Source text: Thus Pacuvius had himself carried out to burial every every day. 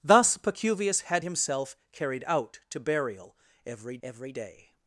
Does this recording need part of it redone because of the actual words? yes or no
no